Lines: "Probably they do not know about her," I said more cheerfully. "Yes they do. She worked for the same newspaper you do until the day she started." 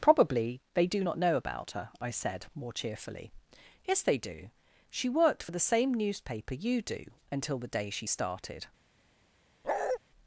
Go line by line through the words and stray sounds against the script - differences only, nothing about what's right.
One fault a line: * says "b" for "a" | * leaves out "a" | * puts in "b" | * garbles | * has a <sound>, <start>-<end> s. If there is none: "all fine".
* has a bark, 9.6-10.0 s